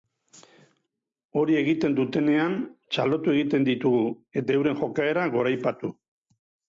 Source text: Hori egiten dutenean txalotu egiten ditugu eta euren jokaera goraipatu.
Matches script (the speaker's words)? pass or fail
pass